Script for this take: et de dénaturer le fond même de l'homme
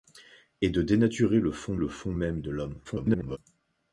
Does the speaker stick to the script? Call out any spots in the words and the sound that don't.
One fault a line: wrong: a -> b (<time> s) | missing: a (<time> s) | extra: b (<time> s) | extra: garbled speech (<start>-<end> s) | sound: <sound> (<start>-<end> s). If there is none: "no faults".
extra: le fond (1.8 s)
extra: garbled speech (2.8-3.4 s)